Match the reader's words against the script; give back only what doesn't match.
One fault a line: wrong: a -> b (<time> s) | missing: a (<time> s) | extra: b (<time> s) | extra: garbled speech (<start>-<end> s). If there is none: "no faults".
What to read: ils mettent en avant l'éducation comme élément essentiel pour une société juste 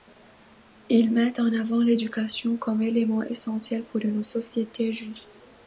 no faults